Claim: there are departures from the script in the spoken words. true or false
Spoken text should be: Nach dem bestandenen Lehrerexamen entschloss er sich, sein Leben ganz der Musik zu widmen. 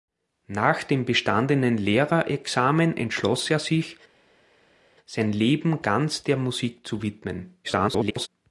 true